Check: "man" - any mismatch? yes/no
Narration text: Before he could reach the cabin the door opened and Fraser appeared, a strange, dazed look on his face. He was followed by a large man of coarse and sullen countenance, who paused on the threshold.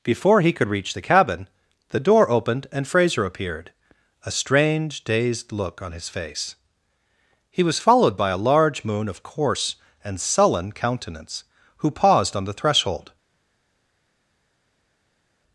yes